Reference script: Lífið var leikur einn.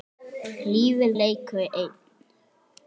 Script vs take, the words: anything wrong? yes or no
yes